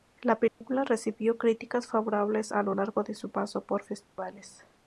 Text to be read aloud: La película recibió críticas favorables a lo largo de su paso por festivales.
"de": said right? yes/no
yes